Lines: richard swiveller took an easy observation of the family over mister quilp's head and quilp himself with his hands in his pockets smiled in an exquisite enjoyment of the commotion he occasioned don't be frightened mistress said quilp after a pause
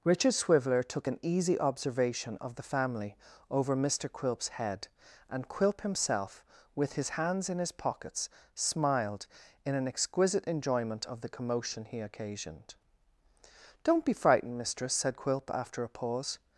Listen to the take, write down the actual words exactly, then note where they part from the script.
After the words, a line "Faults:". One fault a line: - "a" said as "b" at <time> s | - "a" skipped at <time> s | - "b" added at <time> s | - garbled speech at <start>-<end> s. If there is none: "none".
richard swiveller took an easy observation of the family over mister quilp's head and quilp himself with his hands in his pockets smiled in an exquisite enjoyment of the commotion he occasioned don't be frightened mistress said quilp after a pause
Faults:
none